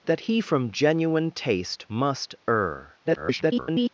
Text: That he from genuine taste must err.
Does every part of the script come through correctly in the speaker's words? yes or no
no